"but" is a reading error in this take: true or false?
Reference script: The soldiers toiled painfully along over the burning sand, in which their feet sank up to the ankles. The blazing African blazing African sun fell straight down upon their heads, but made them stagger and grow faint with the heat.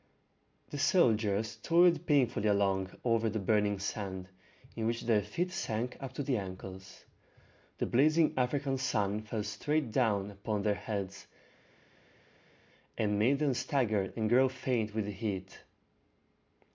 true